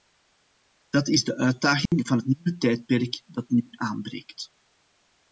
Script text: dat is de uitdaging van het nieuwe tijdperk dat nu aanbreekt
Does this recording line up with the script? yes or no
yes